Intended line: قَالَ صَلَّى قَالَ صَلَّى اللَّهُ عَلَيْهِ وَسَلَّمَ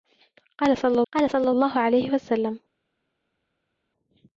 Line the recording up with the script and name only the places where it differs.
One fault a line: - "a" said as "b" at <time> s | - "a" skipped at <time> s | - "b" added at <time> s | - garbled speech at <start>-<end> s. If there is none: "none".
none